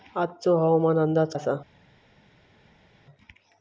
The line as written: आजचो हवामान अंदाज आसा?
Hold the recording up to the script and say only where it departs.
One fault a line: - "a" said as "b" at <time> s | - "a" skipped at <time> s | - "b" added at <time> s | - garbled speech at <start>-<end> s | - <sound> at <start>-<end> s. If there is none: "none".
none